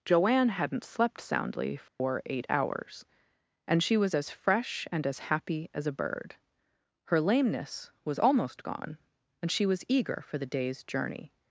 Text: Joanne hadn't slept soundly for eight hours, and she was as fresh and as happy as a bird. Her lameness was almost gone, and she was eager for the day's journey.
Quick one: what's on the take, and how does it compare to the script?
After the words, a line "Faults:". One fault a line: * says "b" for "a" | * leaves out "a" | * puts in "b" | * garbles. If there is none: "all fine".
Joanne hadn't slept soundly for eight hours, and she was as fresh and as happy as a bird. Her lameness was almost gone, and she was eager for the day's journey.
Faults:
all fine